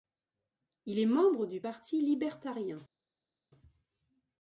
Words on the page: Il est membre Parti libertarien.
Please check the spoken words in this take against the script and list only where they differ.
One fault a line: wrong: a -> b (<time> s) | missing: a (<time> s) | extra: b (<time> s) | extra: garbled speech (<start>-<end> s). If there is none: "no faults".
extra: du (1.4 s)